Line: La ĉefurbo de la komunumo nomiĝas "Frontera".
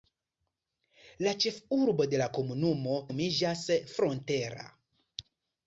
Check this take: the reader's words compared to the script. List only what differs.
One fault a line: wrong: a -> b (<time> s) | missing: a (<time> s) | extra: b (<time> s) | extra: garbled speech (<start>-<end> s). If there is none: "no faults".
no faults